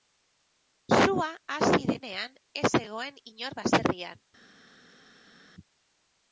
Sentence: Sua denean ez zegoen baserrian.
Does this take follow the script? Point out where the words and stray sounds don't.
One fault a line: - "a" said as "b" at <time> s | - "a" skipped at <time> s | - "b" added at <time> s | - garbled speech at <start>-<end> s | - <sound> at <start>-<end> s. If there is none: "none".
- "hasi" added at 1.6 s
- "inor" added at 3.3 s